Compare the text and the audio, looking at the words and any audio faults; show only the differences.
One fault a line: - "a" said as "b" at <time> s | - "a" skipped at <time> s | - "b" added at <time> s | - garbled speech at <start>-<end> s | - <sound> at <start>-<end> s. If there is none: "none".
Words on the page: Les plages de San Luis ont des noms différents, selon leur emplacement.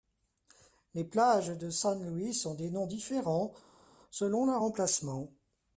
none